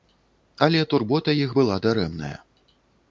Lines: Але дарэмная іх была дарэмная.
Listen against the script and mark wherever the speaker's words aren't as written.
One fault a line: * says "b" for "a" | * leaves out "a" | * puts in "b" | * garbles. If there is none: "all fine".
* says "турбота" for "дарэмная"